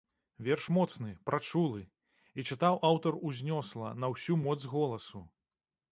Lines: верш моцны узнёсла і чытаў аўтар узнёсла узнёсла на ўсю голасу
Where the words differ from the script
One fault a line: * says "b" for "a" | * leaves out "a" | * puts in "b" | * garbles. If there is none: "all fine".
* says "прачулы" for "узнёсла"
* leaves out "узнёсла"
* puts in "моц"